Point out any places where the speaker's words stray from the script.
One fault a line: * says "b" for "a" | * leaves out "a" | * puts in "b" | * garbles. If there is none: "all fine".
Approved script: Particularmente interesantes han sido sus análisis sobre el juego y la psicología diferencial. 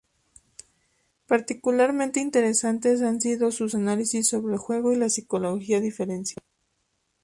all fine